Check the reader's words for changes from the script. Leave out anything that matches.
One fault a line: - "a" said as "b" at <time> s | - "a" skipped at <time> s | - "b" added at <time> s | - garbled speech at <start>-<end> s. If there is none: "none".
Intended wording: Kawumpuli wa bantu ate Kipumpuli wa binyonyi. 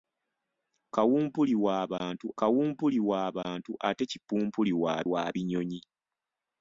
- "kawumpuli wa bantu" added at 2.4 s
- "wa" added at 5.1 s